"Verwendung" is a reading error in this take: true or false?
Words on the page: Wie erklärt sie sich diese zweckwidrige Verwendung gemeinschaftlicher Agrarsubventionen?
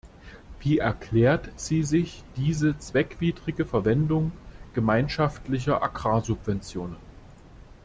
false